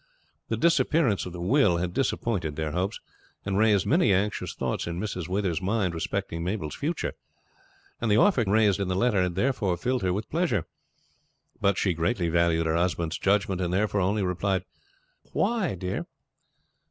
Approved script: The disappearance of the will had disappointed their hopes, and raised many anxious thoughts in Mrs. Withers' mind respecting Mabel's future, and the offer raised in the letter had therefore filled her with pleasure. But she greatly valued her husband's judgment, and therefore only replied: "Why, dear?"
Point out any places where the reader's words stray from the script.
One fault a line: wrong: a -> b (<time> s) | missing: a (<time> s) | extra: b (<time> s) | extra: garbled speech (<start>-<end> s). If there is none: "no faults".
no faults